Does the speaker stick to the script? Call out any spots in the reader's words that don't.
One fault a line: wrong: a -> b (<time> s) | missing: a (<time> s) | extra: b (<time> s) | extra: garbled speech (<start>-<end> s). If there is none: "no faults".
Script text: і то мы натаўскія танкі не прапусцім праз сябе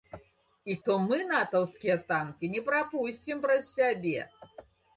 no faults